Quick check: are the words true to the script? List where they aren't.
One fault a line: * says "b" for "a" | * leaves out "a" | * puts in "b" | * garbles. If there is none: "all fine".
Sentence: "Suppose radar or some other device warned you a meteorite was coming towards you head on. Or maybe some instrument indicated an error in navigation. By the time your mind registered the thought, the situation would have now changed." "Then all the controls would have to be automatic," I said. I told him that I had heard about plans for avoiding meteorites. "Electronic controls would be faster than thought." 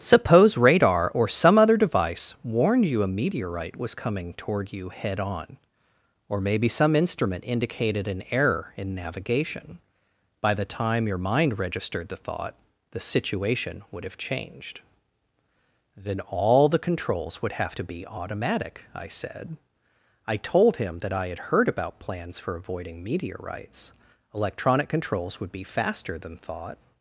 * says "toward" for "towards"
* leaves out "now"